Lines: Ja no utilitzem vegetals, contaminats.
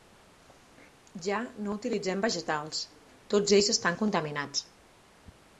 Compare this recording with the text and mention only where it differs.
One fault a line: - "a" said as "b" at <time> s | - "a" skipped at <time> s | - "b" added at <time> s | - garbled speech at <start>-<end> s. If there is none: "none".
- "tots ells estan" added at 3.4 s